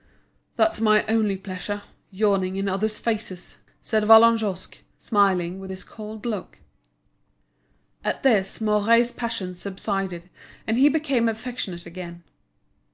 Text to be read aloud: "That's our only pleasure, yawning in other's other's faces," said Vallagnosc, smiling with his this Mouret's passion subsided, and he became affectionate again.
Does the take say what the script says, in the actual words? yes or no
no